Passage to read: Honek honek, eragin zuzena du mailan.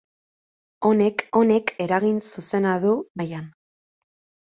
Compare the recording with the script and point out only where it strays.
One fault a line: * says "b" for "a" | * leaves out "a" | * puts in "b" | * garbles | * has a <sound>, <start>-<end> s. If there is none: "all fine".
all fine